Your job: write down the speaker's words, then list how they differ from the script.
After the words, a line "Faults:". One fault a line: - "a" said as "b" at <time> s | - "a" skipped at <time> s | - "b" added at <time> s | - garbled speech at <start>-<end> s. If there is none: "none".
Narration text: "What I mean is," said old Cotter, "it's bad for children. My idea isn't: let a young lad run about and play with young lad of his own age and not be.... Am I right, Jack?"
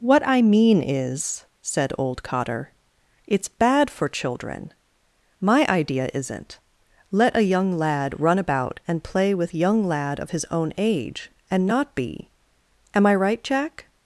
"What I mean is," said old Cotter, "it's bad for children. My idea isn't: let a young lad run about and play with young lad of his own age and not be.... Am I right, Jack?"
Faults:
none